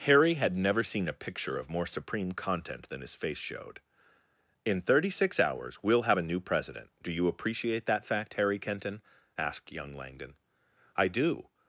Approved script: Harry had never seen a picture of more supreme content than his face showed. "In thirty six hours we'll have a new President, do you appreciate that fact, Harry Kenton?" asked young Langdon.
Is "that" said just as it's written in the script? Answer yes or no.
yes